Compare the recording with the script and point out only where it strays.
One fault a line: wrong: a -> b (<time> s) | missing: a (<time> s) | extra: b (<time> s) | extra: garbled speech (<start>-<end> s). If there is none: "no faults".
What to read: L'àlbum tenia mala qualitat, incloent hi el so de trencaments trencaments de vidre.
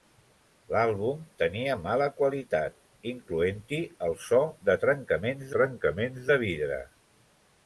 no faults